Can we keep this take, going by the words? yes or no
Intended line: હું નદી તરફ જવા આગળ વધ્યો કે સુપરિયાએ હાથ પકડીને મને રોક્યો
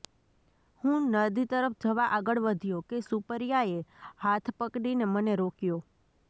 yes